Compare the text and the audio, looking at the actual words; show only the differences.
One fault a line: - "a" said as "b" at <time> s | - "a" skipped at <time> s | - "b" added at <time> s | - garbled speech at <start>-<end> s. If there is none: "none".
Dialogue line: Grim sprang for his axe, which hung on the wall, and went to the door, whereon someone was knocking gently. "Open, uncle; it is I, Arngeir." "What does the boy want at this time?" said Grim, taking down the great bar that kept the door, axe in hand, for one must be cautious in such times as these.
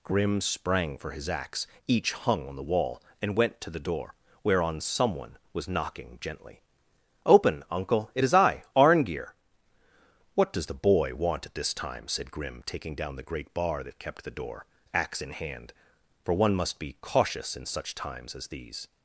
- "which" said as "each" at 1.9 s